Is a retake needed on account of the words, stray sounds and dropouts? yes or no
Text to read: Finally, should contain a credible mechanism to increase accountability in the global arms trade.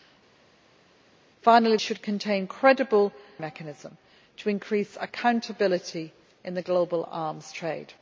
no